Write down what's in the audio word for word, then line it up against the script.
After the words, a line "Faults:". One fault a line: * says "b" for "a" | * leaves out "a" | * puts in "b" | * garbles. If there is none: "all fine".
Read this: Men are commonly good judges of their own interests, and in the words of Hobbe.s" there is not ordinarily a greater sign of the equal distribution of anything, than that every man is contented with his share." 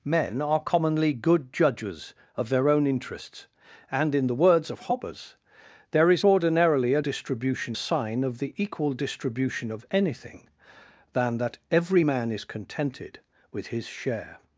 Men are commonly good judges of their own interests, and in the words of Hobbe.s" there is ordinarily a distribution sign of the equal distribution of anything, than that every man is contented with his share."
Faults:
* leaves out "not"
* says "distribution" for "greater"